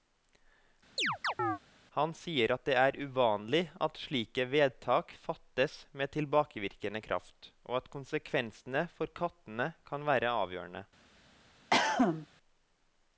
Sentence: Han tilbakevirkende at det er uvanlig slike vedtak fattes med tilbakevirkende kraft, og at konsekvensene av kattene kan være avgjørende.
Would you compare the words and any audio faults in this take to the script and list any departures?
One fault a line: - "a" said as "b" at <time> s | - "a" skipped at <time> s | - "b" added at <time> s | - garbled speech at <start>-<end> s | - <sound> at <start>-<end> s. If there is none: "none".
- chirp at 1.0-1.6 s
- "tilbakevirkende" said as "sier" at 2.2 s
- "at" added at 3.9 s
- "av" said as "for" at 9.0 s
- cough at 11.7-12.3 s